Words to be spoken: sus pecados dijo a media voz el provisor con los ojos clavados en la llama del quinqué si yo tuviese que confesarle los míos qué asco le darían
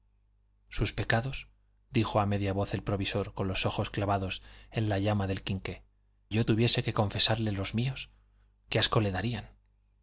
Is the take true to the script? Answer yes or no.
no